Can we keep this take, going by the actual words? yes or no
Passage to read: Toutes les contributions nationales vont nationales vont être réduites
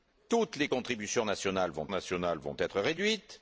yes